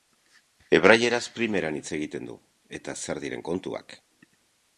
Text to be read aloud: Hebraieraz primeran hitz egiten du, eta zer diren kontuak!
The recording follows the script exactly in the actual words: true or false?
true